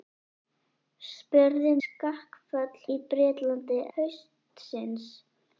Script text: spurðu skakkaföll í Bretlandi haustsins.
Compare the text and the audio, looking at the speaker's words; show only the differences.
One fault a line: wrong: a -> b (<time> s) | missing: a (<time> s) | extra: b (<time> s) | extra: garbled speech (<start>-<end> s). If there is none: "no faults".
no faults